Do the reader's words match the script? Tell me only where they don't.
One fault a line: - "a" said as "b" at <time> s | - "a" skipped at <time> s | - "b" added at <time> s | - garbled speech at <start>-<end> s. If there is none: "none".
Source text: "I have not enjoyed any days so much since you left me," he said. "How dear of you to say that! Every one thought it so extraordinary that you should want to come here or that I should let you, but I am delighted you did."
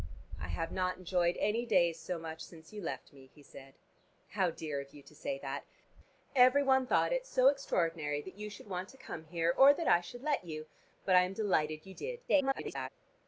- garbled speech at 12.3-12.9 s